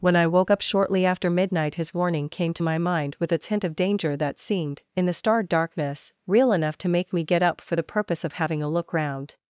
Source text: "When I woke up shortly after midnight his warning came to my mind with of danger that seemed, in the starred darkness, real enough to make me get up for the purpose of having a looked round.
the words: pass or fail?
fail